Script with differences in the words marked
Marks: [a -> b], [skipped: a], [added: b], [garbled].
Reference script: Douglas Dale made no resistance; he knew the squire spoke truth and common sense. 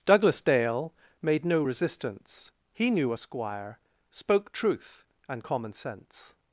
Douglas Dale made no resistance; he knew [the -> a] squire spoke truth and common sense.